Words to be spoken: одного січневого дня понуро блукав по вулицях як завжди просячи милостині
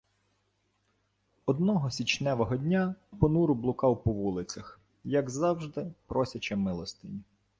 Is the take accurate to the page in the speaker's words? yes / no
yes